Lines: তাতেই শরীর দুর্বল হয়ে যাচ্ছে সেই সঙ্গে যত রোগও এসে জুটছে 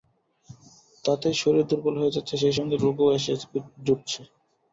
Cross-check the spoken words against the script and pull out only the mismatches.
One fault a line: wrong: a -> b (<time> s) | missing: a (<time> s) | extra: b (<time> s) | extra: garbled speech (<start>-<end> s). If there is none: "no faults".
missing: যত (2.8 s)